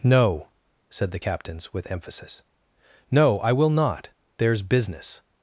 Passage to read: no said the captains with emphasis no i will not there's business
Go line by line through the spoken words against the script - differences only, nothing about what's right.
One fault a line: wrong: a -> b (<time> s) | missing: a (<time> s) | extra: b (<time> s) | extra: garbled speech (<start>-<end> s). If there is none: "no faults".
no faults